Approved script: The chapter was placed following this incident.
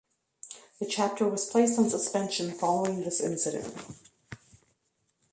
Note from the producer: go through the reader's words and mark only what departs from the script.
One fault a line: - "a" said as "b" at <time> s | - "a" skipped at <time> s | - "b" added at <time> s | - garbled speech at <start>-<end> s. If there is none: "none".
- "on suspension" added at 1.8 s